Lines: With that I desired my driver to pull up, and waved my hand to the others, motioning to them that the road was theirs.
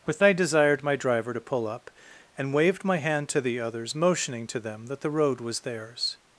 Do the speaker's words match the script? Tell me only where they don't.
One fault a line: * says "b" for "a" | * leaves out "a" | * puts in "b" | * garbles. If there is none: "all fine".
* leaves out "that"